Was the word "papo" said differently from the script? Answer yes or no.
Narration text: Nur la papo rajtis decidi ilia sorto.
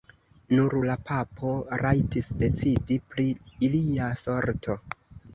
no